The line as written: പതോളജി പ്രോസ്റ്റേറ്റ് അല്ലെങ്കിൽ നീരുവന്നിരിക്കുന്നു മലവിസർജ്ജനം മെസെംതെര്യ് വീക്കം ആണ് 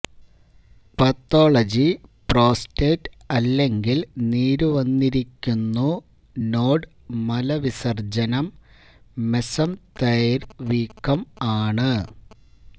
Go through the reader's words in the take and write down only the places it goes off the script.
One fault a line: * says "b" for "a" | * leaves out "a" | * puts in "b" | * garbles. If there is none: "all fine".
* puts in "നോഡ്"